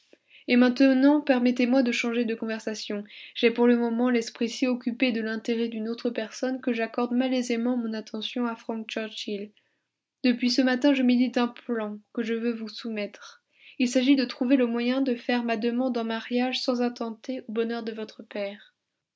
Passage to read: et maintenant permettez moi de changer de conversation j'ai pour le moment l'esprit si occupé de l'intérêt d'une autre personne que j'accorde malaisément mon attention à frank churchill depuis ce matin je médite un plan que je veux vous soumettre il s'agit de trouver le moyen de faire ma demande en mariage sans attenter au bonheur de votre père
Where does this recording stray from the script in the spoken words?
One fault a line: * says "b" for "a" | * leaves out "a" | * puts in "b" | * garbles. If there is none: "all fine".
all fine